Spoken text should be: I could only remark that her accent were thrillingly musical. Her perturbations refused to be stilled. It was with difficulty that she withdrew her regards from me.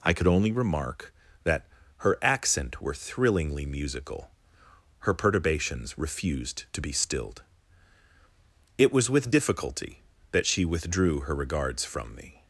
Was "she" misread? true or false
false